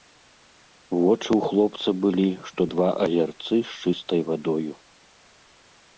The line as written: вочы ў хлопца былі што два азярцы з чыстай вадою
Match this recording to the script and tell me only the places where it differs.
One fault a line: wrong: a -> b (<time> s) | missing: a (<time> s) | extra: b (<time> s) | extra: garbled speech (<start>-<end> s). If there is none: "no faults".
no faults